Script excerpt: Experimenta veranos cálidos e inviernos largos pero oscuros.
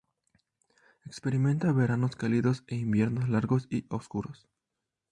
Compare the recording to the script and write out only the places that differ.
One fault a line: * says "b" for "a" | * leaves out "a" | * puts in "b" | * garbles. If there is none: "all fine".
* says "y" for "pero"